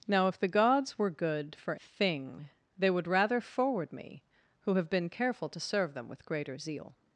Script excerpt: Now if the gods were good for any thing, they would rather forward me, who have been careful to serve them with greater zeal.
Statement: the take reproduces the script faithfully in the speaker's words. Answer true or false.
false